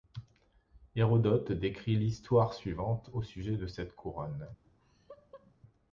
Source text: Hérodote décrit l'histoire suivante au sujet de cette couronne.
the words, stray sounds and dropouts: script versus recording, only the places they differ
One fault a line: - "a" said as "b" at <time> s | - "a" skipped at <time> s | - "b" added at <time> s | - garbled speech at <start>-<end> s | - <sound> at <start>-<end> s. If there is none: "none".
- laugh at 4.6-5.6 s